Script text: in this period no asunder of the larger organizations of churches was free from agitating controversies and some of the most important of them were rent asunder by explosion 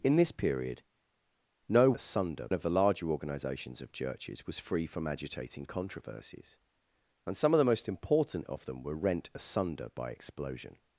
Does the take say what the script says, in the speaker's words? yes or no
yes